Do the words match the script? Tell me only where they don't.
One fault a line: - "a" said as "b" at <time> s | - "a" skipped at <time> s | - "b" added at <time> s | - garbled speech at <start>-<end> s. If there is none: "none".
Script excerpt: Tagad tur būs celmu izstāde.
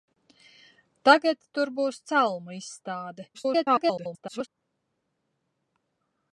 - garbled speech at 3.3-4.5 s